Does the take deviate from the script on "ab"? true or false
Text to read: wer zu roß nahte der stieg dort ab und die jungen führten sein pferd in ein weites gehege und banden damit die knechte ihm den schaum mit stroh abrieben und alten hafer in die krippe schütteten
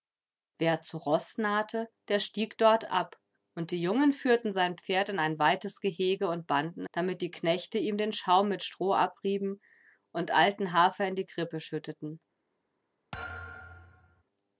false